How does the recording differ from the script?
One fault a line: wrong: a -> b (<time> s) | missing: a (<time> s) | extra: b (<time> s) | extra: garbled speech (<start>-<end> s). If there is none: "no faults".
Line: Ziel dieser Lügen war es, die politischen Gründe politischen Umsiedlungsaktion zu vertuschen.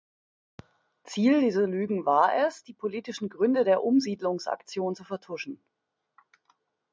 wrong: politischen -> der (3.6 s)